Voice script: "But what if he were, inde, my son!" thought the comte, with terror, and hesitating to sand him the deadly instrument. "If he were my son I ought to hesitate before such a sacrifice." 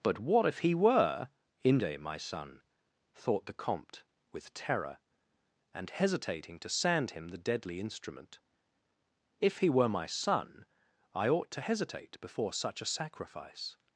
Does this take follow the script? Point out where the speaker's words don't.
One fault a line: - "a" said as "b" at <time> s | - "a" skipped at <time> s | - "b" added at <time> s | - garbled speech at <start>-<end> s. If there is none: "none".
none